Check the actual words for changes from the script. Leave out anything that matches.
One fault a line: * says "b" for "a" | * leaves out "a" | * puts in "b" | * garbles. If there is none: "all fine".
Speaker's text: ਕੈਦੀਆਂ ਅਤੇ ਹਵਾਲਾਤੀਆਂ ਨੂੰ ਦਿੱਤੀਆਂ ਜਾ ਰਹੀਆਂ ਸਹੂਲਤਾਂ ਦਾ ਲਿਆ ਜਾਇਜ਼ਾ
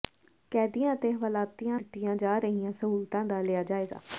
* leaves out "ਨੂੰ"